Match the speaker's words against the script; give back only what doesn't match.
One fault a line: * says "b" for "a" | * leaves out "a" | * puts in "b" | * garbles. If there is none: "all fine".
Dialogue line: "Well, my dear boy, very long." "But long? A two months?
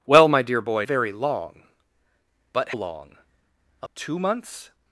all fine